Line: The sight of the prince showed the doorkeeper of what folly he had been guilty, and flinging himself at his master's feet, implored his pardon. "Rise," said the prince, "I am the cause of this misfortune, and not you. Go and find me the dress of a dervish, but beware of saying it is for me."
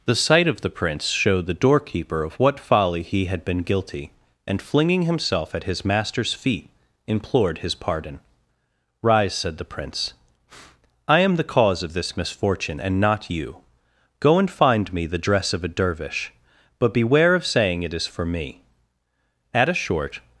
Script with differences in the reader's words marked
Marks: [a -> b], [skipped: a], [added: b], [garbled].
The sight of the prince showed the doorkeeper of what folly he had been guilty, and flinging himself at his master's feet, implored his pardon. "Rise," said the prince, "I am the cause of this misfortune, and not you. Go and find me the dress of a dervish, but beware of saying it is for me." [added: At a short]